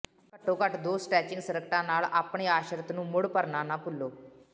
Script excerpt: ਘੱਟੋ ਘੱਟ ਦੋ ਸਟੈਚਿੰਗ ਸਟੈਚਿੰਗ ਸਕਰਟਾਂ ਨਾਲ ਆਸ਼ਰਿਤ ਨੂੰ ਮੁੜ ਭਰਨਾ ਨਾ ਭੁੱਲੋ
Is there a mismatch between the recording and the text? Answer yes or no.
yes